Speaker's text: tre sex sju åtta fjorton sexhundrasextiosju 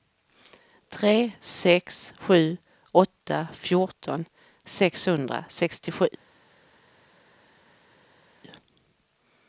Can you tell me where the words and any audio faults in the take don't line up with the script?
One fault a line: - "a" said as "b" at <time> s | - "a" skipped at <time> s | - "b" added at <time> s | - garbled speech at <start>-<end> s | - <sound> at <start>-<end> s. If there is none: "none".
none